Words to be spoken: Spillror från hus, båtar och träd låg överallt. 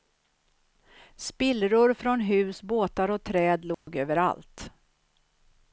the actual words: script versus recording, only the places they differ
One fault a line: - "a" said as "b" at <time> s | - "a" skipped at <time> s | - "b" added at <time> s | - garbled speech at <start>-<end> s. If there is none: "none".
none